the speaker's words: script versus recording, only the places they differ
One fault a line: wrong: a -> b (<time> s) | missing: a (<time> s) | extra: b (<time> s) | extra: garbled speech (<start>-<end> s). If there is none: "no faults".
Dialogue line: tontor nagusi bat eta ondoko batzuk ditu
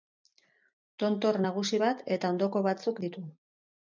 no faults